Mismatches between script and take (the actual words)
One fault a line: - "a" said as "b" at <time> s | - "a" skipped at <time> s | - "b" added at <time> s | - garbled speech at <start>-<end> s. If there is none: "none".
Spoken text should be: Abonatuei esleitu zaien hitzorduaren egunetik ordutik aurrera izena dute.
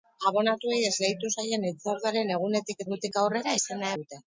none